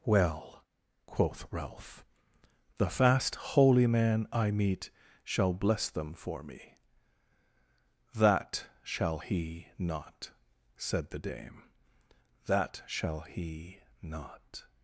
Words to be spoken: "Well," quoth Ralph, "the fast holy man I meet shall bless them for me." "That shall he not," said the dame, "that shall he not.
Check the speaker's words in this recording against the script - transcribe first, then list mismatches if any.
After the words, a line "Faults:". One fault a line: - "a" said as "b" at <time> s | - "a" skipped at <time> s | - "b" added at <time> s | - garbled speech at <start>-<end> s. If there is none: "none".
"Well," quoth Ralph, "the fast holy man I meet shall bless them for me." "That shall he not," said the dame, "that shall he not.
Faults:
none